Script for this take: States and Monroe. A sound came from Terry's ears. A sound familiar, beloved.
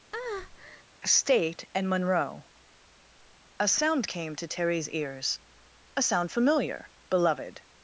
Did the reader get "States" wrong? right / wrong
wrong